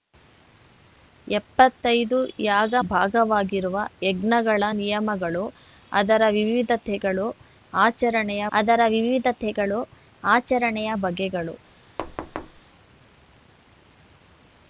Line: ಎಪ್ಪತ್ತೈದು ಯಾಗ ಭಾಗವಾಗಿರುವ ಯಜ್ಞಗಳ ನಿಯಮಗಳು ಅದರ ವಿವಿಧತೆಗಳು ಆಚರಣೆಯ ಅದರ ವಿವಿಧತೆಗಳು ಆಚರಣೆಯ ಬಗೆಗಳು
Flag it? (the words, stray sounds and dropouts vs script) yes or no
yes